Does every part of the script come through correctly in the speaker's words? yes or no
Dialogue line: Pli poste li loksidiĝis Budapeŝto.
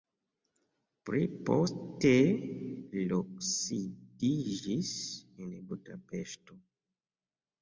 no